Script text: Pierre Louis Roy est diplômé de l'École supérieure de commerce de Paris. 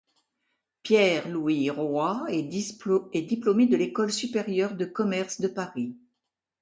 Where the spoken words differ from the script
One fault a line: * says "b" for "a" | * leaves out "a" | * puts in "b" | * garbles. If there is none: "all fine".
all fine